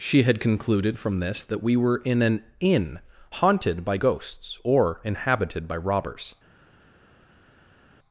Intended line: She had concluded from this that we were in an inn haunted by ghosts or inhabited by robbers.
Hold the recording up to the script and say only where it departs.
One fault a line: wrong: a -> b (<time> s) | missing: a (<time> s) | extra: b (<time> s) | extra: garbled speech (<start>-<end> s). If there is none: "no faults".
no faults